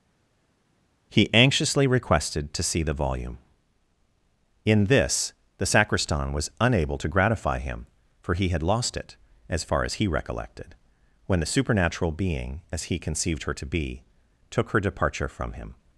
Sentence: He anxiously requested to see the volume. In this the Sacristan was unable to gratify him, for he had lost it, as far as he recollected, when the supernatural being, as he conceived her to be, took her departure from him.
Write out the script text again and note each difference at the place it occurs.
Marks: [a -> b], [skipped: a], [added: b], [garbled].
He anxiously requested to see the volume. In this the Sacristan was unable to gratify him, for he had lost it, as far as he recollected, when the supernatural being, as he conceived her to be, took her departure from him.